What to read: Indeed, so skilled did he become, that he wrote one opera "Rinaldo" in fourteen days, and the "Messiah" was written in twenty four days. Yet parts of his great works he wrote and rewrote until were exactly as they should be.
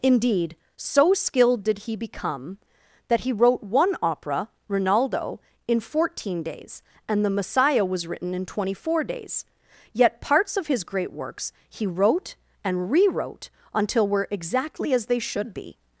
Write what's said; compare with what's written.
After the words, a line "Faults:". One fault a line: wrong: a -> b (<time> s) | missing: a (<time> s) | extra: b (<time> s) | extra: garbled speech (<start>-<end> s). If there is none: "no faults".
Indeed, so skilled did he become, that he wrote one opera "Rinaldo" in fourteen days, and the "Messiah" was written in twenty four days. Yet parts of his great works he wrote and rewrote until were exactly as they should be.
Faults:
no faults